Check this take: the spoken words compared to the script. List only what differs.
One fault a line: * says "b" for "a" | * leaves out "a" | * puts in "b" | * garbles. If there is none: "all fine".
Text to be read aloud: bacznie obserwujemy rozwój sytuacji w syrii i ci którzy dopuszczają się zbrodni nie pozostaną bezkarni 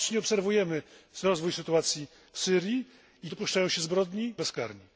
* leaves out "ci którzy"
* leaves out "nie pozostaną"